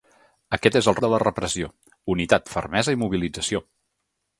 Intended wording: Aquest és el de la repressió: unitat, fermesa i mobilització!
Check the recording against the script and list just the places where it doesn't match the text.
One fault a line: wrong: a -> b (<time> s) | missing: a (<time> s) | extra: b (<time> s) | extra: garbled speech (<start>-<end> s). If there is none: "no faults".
no faults